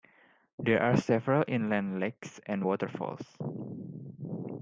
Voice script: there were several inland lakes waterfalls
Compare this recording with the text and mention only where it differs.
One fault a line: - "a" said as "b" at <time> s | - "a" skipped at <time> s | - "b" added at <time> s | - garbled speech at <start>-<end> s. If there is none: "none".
- "were" said as "are" at 0.8 s
- "and" added at 2.5 s